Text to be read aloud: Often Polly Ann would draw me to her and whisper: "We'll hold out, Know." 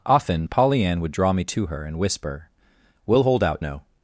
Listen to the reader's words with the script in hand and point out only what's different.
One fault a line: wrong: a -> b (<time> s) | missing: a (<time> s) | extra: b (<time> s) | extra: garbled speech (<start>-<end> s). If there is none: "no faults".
no faults